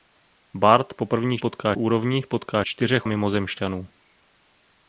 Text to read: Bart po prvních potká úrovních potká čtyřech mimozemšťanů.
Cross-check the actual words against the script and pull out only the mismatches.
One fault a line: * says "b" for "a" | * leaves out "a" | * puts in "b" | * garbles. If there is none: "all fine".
all fine